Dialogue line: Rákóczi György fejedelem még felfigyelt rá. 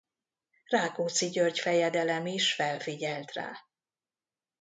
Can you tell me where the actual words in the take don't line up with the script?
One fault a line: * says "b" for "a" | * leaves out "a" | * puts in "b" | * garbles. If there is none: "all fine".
* says "is" for "még"